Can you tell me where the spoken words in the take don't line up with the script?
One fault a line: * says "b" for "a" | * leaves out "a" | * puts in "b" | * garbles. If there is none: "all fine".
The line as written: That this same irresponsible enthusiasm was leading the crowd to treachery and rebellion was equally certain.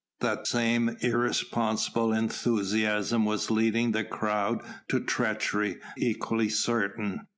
* leaves out "this"
* leaves out "and rebellion was"